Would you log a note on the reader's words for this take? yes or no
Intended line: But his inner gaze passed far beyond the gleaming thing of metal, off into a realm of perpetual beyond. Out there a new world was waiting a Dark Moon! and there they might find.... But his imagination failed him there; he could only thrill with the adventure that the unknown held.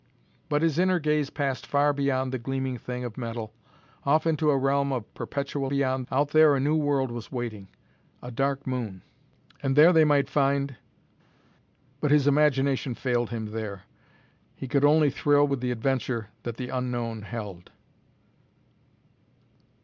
no